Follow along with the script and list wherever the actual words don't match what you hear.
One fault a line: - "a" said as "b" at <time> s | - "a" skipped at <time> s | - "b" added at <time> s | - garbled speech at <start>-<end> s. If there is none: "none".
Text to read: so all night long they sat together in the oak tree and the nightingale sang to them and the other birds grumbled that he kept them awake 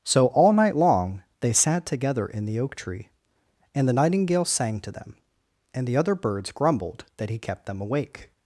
none